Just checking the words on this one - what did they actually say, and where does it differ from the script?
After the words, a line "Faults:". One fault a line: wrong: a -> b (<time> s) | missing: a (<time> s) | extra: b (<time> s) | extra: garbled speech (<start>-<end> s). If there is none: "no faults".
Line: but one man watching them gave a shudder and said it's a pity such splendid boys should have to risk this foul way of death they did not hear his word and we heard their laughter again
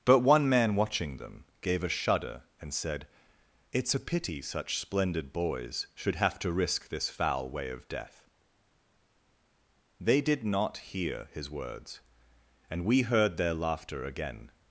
but one man watching them gave a shudder and said it's a pity such splendid boys should have to risk this foul way of death they did not hear his words and we heard their laughter again
Faults:
wrong: word -> words (11.5 s)